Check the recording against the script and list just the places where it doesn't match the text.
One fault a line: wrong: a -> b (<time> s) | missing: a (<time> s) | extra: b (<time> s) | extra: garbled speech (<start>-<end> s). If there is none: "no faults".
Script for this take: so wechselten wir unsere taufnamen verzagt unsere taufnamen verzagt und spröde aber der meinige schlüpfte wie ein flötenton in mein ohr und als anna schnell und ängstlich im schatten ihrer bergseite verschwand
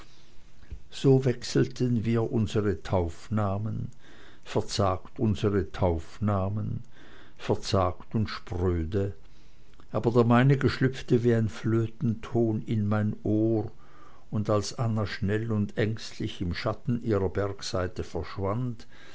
no faults